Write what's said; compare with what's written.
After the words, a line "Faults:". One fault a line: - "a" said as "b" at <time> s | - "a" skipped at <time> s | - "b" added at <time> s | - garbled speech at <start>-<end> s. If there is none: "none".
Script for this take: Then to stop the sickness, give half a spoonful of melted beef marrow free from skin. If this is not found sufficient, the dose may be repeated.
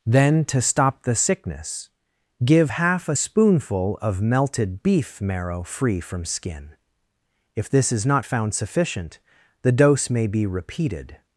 Then to stop the sickness, give half a spoonful of melted beef marrow free from skin. If this is not found sufficient, the dose may be repeated.
Faults:
none